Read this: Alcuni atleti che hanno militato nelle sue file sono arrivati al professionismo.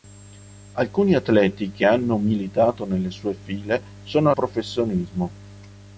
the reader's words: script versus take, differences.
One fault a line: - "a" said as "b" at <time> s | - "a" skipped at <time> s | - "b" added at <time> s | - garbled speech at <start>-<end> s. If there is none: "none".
- "arrivati al" skipped at 4.3 s